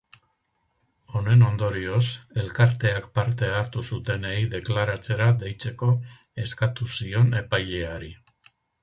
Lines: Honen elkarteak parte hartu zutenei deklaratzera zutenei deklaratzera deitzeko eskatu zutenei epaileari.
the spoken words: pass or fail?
fail